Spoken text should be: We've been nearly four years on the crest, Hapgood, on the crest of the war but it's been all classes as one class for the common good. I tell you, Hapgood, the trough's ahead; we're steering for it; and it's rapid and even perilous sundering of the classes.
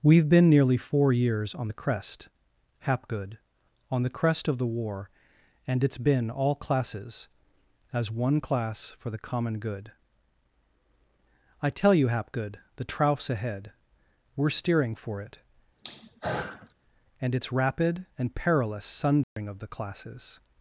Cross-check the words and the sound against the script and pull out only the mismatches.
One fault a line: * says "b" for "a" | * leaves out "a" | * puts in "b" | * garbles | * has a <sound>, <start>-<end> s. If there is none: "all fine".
* says "and" for "but"
* has a throat clearing, 15.8-16.7 s
* leaves out "even"
* has a dropout, 19.2-19.4 s